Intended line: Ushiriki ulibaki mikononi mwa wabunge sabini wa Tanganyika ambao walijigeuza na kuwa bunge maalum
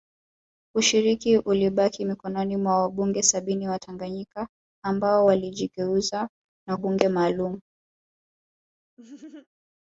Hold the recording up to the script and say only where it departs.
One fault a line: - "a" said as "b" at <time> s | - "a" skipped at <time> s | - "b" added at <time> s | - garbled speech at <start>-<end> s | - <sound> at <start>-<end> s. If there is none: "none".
- "kuwa" skipped at 6.8 s
- laugh at 9.0-9.5 s